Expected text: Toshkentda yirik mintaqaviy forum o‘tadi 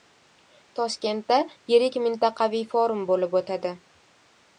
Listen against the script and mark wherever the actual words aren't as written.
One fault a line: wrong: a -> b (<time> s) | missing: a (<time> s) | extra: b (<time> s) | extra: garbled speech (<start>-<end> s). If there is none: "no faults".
extra: bo‘lib (3.1 s)